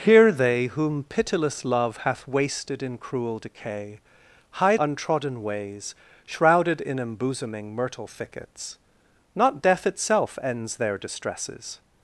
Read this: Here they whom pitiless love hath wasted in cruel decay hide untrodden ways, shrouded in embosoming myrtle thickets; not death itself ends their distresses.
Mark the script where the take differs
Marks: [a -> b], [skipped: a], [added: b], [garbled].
Here they whom pitiless love hath wasted in cruel decay hide untrodden ways, shrouded in embosoming myrtle thickets; not death itself ends their distresses.